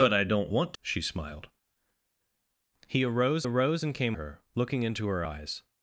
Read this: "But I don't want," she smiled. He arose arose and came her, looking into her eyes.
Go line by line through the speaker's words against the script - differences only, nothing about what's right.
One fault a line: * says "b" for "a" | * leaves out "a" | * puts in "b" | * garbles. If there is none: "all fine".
all fine